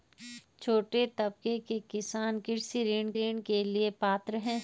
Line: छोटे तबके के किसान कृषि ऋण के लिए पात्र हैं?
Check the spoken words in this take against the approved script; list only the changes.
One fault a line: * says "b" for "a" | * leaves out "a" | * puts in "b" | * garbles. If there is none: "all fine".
* puts in "ऋण"